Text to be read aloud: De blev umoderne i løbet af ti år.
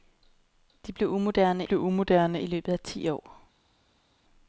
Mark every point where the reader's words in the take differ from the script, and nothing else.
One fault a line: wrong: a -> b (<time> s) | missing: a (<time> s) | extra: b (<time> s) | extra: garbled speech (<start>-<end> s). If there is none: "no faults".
extra: blev umoderne (1.6 s)